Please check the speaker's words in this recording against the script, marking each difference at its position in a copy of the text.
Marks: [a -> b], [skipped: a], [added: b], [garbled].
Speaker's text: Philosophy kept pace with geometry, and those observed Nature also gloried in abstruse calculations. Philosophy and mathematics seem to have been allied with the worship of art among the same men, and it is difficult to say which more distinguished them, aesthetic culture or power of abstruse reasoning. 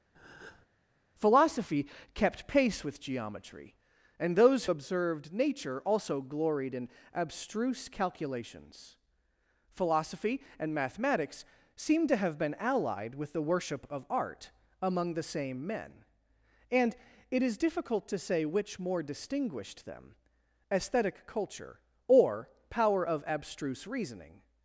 Philosophy kept pace with geometry, and those observed Nature also gloried in abstruse calculations. Philosophy and mathematics seem to have been allied with the worship of art among the same men, and it is difficult to say which more distinguished them, aesthetic culture or power of abstruse reasoning.